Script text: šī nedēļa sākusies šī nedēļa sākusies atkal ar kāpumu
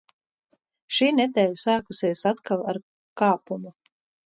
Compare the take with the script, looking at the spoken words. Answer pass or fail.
fail